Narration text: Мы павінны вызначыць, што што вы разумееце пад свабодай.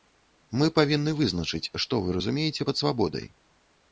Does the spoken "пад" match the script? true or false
true